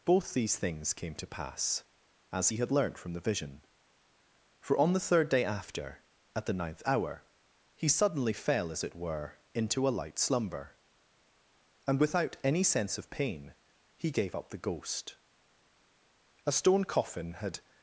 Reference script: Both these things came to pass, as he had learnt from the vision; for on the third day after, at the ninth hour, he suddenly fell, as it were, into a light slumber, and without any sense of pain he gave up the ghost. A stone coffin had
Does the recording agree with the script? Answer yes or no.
yes